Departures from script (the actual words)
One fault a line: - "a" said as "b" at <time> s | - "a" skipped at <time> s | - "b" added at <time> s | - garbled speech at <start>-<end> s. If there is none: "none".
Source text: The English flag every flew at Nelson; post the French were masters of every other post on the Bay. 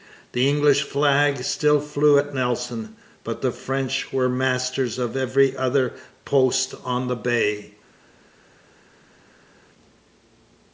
- "every" said as "still" at 1.4 s
- "post" said as "but" at 3.2 s